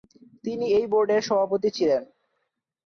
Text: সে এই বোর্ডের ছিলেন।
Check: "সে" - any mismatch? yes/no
yes